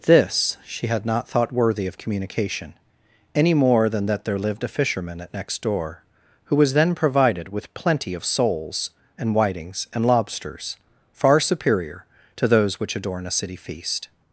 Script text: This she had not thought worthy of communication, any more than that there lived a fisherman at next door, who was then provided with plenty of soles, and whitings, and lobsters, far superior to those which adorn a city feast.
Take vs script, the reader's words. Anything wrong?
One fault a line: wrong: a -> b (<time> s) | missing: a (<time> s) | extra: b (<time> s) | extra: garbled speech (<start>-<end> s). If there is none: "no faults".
no faults